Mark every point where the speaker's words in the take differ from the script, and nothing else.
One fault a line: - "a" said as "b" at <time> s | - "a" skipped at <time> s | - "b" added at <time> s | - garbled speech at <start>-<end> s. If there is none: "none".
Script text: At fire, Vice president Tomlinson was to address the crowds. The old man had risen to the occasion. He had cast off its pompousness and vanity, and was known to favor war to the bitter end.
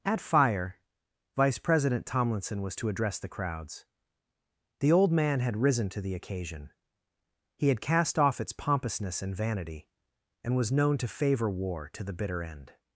none